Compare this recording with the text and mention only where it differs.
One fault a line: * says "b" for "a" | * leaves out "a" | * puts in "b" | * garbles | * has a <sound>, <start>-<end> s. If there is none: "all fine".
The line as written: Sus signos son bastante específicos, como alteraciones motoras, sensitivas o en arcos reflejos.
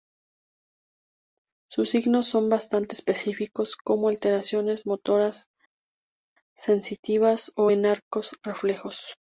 all fine